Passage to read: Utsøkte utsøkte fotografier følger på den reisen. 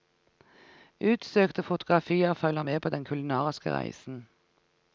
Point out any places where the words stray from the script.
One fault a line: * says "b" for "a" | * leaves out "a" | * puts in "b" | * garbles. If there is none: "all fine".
* leaves out "utsøkte"
* puts in "med"
* puts in "kulinariske"